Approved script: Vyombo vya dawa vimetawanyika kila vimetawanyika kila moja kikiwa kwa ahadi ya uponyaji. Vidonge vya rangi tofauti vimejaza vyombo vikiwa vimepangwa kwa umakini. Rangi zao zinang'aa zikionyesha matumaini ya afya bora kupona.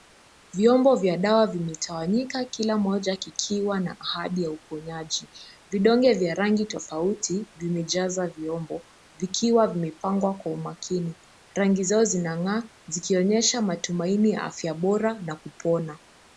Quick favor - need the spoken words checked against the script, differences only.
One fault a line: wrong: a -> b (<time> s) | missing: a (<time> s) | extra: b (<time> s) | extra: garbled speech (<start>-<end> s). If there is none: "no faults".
missing: vimetawanyika kila (2.8 s)
wrong: kwa -> na (3.8 s)
extra: na (15.2 s)